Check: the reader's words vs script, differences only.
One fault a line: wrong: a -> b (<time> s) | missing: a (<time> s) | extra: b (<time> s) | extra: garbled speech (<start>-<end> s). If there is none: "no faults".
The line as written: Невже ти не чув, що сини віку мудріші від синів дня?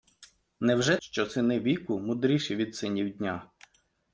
missing: ти не чув (1.0 s)